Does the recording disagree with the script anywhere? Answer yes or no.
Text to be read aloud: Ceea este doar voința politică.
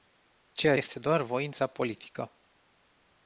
no